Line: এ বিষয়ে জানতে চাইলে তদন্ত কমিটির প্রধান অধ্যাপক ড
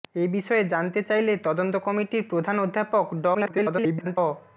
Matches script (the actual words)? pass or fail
fail